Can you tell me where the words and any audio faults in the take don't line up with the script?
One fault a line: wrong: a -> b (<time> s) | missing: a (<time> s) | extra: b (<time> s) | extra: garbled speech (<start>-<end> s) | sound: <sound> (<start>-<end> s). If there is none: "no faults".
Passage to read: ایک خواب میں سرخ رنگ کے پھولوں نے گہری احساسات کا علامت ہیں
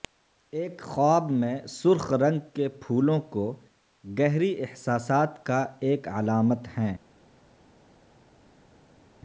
wrong: نے -> کو (3.3 s)
extra: ایک (5.8 s)